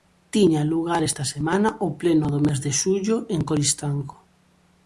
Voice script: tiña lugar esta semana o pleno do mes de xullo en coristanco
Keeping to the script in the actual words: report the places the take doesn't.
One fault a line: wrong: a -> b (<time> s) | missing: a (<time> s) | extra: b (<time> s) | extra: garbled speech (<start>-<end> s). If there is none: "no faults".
no faults